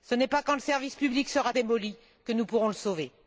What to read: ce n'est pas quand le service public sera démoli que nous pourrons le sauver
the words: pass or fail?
pass